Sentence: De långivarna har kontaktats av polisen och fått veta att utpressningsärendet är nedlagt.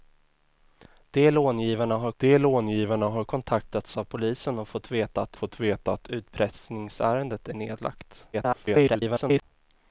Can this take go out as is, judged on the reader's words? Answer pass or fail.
fail